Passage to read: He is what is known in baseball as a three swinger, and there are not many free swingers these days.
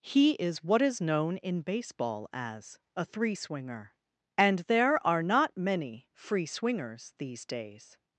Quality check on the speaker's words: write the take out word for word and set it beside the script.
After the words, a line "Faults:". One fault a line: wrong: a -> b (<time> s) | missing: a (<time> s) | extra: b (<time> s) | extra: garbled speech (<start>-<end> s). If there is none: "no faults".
He is what is known in baseball as a three swinger, and there are not many free swingers these days.
Faults:
no faults